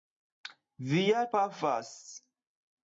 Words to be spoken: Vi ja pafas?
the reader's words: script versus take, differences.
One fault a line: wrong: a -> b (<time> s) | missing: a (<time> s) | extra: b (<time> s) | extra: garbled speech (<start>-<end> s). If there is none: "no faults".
no faults